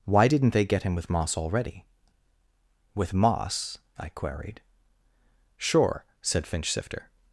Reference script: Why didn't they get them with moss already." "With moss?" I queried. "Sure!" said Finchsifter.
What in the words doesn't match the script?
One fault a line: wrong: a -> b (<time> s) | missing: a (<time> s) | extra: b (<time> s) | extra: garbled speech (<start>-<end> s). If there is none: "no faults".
wrong: them -> him (0.8 s)